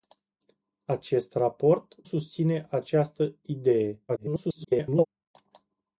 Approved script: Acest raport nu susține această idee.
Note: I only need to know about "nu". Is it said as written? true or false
false